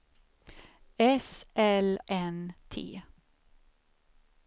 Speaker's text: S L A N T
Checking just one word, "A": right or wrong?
wrong